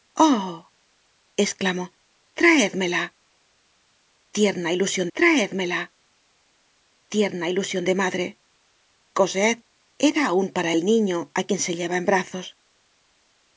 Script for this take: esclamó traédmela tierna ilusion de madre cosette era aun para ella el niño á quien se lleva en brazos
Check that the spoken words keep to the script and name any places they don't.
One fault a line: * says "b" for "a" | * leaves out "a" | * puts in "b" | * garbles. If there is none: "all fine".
* puts in "traédmela tierna ilusion"
* leaves out "ella"